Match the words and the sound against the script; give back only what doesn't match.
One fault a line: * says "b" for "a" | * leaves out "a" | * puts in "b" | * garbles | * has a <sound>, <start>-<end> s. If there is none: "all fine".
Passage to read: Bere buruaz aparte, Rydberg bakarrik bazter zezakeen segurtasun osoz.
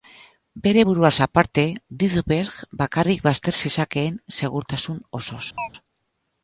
* has a chirp, 5.6-5.7 s